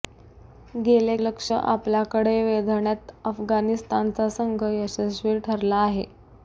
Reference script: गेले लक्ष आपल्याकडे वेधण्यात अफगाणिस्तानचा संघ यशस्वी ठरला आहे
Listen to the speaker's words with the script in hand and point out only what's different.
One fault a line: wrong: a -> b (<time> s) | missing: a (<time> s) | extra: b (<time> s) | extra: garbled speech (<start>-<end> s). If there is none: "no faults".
no faults